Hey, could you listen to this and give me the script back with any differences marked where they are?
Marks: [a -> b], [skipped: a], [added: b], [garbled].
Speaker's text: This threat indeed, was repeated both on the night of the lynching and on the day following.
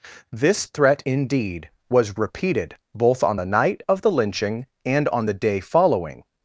This threat indeed, was repeated both on the night of the lynching and on the day following.